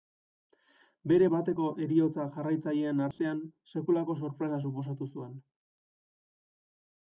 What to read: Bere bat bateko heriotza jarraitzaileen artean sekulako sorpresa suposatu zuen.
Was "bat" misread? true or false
true